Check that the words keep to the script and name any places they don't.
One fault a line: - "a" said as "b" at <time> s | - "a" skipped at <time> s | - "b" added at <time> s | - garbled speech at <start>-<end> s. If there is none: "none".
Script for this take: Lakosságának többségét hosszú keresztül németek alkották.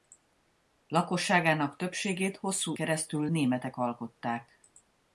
none